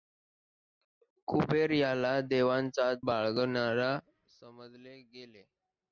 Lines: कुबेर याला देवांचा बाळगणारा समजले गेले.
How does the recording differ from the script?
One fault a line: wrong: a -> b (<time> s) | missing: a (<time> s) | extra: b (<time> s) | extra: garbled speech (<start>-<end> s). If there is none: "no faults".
no faults